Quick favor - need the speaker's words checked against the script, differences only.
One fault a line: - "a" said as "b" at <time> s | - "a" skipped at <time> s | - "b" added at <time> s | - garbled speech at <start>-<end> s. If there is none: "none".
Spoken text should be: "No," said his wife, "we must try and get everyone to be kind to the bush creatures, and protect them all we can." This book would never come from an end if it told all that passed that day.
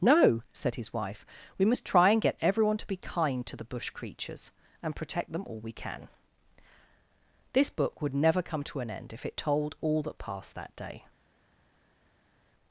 - "from" said as "to" at 8.6 s